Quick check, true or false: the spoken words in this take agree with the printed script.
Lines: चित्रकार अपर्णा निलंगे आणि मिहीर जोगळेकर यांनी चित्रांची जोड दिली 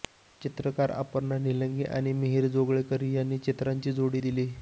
true